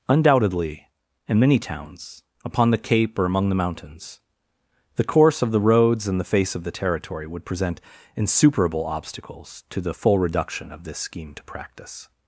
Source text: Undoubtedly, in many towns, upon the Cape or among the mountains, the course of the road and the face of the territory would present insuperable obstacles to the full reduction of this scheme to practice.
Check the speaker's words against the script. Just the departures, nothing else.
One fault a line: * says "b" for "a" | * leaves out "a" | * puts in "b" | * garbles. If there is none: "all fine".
* says "roads" for "road"